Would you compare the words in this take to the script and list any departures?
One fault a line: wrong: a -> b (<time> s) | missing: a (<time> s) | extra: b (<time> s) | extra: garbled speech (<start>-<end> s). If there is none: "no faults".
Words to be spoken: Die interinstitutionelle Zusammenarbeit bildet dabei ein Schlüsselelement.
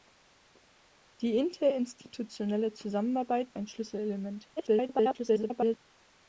missing: bildet dabei (3.5 s)
extra: garbled speech (4.6-5.8 s)